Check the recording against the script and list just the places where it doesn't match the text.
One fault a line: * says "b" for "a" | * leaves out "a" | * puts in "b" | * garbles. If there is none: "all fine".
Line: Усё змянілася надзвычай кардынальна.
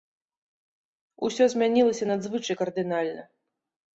all fine